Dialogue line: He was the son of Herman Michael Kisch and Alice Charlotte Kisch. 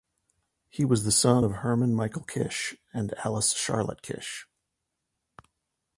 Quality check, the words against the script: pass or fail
pass